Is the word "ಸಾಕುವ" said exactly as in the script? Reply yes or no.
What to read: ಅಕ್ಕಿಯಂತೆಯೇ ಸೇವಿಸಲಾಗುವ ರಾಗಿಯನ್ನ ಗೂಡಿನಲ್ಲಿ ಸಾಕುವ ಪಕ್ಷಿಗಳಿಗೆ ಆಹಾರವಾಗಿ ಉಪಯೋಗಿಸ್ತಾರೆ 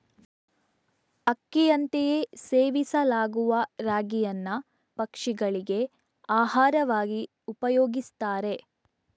no